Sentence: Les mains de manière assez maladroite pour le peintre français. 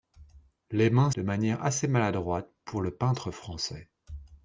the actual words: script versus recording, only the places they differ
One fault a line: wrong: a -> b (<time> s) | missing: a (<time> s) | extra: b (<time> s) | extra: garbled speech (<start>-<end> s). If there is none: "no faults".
no faults